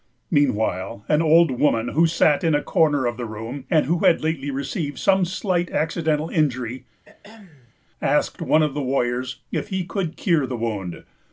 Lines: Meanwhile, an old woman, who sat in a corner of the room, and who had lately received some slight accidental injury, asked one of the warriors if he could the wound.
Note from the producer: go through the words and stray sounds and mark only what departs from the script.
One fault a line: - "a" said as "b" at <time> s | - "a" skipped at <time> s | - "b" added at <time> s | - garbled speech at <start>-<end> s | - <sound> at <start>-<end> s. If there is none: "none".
- throat clearing at 7.0-7.7 s
- "cure" added at 10.2 s